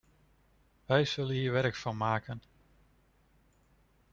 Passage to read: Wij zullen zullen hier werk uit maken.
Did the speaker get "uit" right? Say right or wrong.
wrong